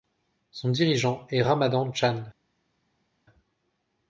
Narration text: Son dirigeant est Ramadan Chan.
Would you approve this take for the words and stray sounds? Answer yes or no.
yes